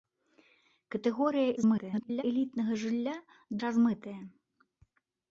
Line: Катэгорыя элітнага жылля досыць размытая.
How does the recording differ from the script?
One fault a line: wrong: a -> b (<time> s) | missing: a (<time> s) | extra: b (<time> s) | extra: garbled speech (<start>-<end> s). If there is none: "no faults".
extra: garbled speech (1.6-2.2 s)
missing: досыць (3.2 s)